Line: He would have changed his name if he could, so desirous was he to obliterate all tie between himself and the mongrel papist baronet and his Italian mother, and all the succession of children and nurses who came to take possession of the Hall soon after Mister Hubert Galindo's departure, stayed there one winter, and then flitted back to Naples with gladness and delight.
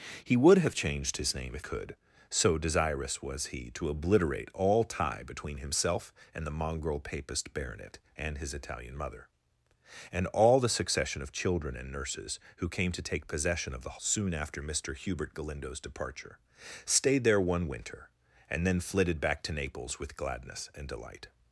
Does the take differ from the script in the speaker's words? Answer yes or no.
yes